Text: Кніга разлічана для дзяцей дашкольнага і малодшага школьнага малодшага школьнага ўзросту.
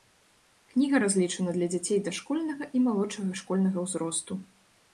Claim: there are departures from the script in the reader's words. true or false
true